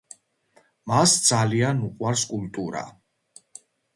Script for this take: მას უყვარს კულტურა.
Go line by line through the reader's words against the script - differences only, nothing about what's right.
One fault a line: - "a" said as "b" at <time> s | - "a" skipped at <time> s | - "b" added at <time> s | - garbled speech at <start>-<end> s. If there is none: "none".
- "ძალიან" added at 1.3 s